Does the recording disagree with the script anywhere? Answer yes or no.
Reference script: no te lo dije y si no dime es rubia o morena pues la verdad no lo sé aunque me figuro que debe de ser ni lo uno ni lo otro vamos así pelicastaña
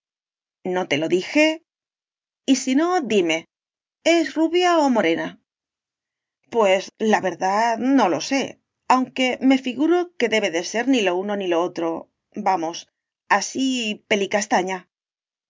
no